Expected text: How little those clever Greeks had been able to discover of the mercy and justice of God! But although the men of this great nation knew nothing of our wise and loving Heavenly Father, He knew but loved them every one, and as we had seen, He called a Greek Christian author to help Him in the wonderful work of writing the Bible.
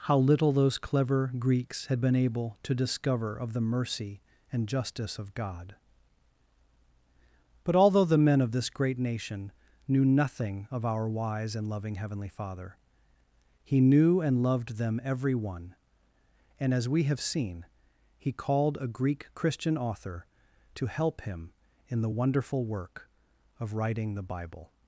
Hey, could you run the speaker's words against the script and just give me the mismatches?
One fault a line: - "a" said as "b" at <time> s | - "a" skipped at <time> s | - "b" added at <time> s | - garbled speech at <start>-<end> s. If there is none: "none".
- "but" said as "and" at 14.2 s
- "had" said as "have" at 17.0 s